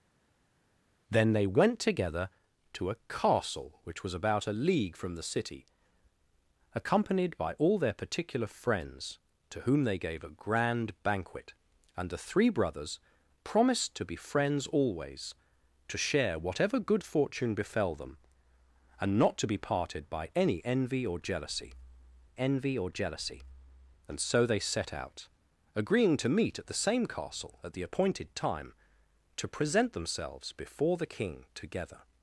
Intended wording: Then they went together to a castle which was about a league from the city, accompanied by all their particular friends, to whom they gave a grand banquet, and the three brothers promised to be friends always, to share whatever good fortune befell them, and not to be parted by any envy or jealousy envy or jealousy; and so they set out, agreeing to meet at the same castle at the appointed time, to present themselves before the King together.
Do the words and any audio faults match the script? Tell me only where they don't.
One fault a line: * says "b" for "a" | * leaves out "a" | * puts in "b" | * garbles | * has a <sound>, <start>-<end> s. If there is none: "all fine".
all fine